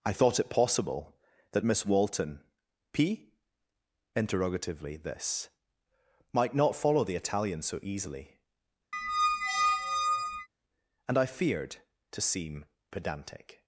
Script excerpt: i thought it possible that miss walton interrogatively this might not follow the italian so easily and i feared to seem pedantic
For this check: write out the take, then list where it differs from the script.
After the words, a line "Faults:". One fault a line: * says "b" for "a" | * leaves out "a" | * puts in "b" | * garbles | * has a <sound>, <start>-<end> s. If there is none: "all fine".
i thought it possible that miss walton p interrogatively this might not follow the italian so easily and i feared to seem pedantic
Faults:
* puts in "p"
* has a squeak, 8.9-10.5 s